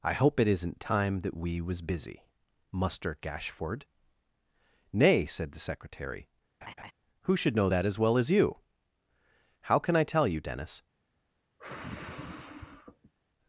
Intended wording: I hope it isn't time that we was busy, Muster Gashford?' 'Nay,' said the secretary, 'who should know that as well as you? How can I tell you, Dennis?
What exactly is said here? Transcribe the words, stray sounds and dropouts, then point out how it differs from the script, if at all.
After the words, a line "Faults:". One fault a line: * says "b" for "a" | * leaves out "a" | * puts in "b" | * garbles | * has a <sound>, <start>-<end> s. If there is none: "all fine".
I hope it isn't time that we was busy, Muster Gashford?' 'Nay,' said the secretary, 'who should know that as well as you? How can I tell you, Dennis?
Faults:
* has a laugh, 6.6-6.9 s
* has a sigh, 11.6-13.1 s